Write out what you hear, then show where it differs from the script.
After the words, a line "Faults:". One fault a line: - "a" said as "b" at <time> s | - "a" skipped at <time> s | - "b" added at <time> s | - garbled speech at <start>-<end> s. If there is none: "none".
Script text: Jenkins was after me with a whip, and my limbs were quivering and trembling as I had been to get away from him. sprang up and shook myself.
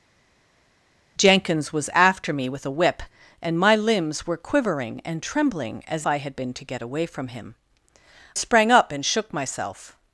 Jenkins was after me with a whip, and my limbs were quivering and trembling as I had been to get away from him. sprang up and shook myself.
Faults:
none